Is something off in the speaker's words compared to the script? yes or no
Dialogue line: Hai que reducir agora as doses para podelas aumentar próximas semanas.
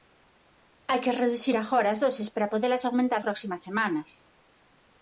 no